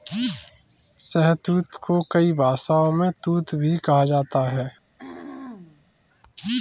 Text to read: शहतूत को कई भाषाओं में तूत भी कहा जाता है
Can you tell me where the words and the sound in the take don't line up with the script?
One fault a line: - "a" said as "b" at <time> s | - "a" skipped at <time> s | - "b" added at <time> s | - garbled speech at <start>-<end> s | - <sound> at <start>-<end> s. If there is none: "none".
- throat clearing at 5.0-5.9 s